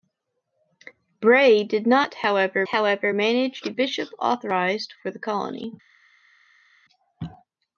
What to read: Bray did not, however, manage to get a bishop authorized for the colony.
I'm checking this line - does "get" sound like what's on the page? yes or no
no